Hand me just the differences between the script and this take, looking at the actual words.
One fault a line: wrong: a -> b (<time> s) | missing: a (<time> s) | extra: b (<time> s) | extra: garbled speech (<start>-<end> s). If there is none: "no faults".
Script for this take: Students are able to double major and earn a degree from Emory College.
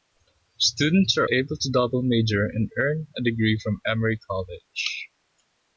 no faults